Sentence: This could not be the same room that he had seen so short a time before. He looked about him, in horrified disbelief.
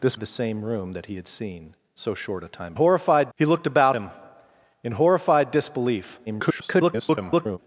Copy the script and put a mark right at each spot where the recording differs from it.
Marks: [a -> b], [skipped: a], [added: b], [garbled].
This [skipped: could not be] the same room that he had seen so short a time [before. -> horrified] He looked about him, in horrified disbelief. [garbled]